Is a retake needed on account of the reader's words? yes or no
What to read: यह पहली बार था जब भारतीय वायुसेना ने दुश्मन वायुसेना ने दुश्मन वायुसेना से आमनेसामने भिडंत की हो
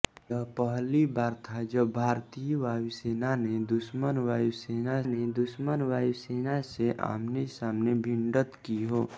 no